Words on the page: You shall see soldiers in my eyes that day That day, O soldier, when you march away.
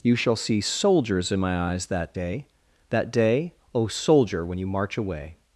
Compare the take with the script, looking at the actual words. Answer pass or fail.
pass